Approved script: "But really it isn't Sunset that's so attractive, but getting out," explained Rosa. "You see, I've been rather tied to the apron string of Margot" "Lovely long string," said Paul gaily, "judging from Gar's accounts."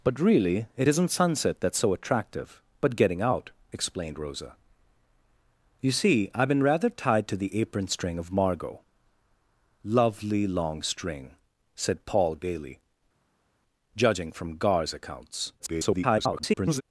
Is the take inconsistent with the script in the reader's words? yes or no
yes